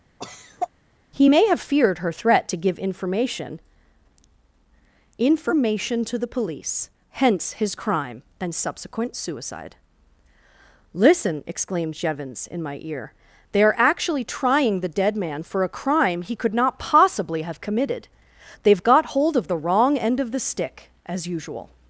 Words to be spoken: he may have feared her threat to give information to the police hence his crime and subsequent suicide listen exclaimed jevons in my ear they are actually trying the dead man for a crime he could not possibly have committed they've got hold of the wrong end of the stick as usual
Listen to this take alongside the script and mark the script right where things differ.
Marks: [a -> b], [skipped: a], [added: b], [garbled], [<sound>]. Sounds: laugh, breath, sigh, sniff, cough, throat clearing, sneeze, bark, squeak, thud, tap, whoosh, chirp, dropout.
[cough] he may have feared her threat to give information [added: information] to the police hence his crime and subsequent suicide listen exclaimed jevons in my ear they are actually trying the dead man for a crime he could not possibly have committed they've got hold of the wrong end of the stick as usual